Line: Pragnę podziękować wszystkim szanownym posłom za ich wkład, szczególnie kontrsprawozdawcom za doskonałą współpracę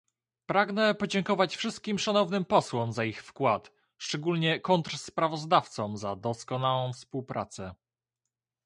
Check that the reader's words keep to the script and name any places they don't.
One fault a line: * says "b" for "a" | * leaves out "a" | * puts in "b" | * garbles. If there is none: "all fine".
all fine